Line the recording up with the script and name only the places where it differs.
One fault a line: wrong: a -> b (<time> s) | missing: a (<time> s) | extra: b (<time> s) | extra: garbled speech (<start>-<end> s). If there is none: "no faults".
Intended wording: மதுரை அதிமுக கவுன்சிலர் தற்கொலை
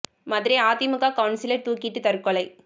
extra: தூக்கிட்டு (1.7 s)